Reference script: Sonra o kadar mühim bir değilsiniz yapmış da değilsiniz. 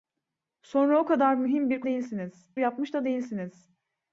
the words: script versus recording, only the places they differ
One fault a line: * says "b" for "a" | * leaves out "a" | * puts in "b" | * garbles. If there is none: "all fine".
all fine